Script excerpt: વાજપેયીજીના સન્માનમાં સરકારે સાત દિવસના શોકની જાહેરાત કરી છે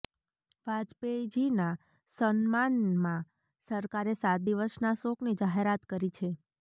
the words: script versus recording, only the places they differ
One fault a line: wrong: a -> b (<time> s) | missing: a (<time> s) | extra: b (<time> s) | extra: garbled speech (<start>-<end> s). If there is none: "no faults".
no faults